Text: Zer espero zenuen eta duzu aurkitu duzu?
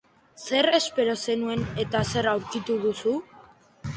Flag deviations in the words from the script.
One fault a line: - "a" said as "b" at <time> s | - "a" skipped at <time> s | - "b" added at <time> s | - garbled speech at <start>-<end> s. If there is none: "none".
- "duzu" said as "zer" at 2.1 s